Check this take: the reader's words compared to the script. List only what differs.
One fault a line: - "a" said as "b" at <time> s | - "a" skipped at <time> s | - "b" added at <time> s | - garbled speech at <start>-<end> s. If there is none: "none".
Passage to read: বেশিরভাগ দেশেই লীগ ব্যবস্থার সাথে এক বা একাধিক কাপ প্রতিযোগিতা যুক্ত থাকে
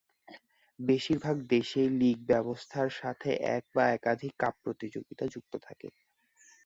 none